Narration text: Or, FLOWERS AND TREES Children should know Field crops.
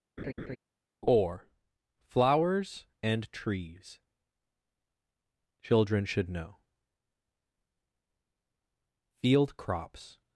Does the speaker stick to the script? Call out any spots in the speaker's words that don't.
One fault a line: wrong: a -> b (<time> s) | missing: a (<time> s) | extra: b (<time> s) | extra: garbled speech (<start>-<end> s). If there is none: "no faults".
no faults